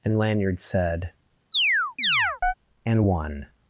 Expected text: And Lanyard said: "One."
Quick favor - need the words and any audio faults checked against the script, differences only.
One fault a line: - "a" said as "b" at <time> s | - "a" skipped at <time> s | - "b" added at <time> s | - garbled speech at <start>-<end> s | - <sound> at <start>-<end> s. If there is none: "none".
- chirp at 1.5-2.5 s
- "And" added at 2.9 s